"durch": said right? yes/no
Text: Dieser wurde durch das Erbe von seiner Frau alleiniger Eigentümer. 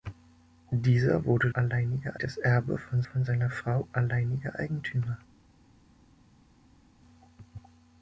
no